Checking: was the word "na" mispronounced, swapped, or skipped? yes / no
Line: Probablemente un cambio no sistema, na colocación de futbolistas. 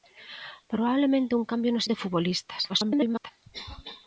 yes